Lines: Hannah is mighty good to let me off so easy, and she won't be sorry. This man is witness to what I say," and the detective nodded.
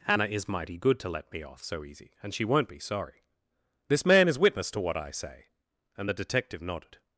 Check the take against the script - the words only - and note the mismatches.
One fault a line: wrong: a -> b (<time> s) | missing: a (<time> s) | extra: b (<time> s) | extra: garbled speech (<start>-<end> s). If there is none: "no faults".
no faults